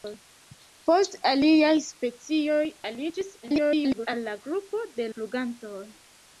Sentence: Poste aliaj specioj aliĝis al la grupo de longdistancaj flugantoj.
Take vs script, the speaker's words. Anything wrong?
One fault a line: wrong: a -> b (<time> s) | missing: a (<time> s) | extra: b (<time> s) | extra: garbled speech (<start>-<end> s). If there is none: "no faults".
extra: garbled speech (3.4-4.1 s)
missing: longdistancaj (5.1 s)